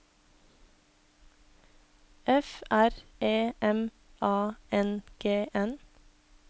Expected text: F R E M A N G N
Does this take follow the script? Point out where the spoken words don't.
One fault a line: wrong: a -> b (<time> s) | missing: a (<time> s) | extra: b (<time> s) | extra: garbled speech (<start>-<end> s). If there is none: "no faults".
no faults